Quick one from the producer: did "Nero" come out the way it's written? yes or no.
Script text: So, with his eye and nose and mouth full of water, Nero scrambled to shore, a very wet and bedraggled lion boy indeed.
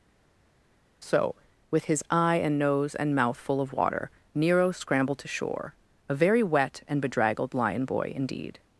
yes